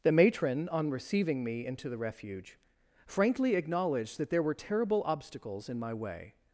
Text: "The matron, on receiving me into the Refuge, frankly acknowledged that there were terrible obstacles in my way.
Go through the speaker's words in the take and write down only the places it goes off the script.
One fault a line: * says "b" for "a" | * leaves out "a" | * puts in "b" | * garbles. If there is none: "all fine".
all fine